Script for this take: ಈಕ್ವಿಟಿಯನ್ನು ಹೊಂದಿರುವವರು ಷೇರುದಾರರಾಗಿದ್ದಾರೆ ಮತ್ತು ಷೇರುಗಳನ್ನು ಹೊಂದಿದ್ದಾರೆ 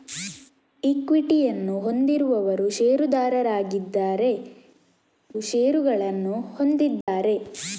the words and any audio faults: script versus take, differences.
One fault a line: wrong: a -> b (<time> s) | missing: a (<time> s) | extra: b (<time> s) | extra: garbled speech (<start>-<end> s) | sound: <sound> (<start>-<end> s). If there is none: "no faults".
missing: ಮತ್ತು (4.3 s)
sound: dropout (7.0-7.1 s)